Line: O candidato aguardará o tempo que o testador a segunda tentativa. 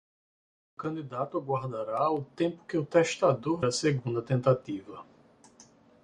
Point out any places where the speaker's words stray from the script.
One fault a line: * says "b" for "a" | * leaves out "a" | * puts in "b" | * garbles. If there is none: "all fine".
all fine